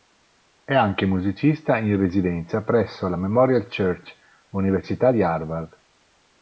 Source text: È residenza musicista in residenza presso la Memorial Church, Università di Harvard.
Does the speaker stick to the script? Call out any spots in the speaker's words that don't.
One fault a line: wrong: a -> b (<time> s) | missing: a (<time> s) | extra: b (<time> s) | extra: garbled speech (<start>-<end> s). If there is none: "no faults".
wrong: residenza -> anche (0.7 s)